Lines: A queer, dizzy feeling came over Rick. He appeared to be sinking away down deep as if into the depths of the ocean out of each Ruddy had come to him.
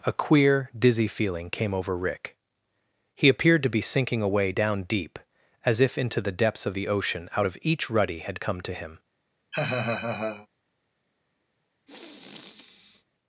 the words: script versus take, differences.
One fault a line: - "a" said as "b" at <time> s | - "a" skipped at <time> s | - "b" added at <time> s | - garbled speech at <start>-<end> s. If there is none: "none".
none